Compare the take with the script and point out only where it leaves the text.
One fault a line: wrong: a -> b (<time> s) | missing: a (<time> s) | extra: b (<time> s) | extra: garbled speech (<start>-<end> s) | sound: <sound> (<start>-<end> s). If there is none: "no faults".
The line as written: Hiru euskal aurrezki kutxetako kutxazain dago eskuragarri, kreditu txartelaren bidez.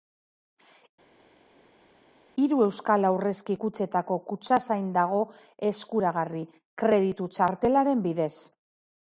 no faults